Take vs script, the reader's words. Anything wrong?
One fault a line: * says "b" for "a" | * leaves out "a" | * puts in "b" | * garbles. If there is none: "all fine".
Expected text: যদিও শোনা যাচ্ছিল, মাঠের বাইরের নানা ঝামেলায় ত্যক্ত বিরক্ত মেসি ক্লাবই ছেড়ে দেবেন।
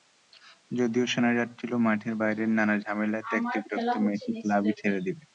all fine